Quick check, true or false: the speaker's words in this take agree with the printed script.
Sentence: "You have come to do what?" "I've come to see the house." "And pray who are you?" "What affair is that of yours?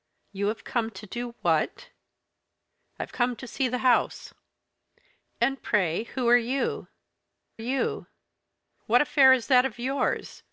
false